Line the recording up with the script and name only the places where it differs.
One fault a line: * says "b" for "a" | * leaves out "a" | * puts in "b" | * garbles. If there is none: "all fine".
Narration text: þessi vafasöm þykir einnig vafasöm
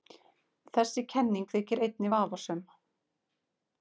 * says "kenning" for "vafasöm"